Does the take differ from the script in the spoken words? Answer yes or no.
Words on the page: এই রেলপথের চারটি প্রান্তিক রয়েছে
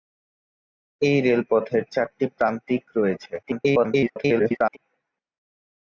yes